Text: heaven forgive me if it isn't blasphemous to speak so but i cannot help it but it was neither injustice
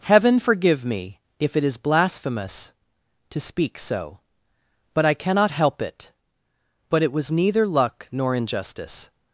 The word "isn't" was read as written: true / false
false